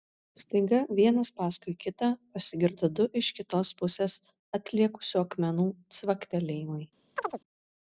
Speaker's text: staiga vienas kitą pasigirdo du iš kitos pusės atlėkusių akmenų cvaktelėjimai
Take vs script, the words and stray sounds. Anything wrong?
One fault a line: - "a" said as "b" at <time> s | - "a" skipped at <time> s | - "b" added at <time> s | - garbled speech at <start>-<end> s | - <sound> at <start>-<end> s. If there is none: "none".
- "paskui" added at 1.4 s
- chirp at 7.2-7.4 s